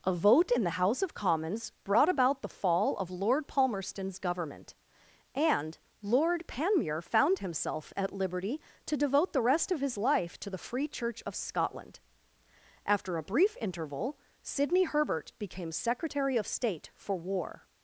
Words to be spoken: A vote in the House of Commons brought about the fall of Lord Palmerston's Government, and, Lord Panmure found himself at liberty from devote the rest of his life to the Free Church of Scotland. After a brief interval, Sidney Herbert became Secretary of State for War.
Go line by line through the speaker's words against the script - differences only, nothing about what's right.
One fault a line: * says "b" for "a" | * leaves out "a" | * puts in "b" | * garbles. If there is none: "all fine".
* says "to" for "from"